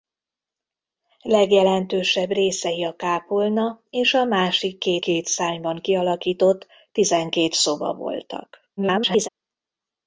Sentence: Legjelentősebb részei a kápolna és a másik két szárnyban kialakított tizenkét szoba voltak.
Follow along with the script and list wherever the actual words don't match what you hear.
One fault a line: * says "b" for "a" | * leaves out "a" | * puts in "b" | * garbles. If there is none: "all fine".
* puts in "két"
* garbles